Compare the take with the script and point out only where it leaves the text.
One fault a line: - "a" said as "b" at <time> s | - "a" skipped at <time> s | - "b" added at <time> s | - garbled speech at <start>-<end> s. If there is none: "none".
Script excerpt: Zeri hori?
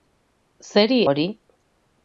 none